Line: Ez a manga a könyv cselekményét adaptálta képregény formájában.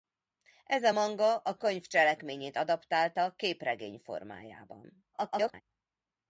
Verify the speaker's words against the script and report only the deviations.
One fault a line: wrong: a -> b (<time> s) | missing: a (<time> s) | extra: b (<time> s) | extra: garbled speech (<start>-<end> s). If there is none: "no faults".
extra: garbled speech (5.1-5.6 s)